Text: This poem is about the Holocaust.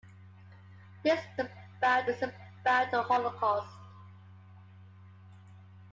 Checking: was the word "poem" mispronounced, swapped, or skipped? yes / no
yes